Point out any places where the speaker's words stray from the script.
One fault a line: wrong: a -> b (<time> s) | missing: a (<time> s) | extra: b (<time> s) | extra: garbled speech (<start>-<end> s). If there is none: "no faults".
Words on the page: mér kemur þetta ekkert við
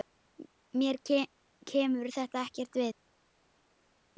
no faults